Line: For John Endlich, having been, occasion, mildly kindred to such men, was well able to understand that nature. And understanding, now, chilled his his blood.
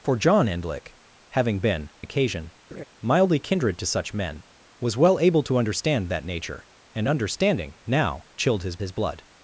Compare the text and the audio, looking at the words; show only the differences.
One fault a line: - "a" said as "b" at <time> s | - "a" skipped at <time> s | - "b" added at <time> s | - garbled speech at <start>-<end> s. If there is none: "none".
none